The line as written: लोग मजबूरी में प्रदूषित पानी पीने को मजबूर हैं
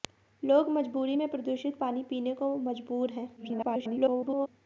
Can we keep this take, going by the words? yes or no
no